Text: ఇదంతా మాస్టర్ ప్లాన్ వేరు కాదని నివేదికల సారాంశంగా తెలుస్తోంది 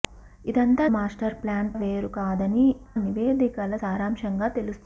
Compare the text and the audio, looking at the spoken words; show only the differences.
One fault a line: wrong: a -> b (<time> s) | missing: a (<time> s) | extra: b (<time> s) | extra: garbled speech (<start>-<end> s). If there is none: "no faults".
no faults